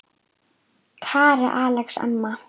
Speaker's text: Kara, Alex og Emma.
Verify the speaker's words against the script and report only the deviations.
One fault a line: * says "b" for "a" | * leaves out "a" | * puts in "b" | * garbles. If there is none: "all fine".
all fine